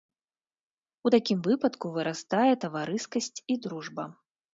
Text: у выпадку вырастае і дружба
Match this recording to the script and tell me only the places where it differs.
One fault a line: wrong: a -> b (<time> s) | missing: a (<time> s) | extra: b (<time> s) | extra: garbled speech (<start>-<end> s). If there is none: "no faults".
extra: такім (1.1 s)
extra: таварыскасць (2.7 s)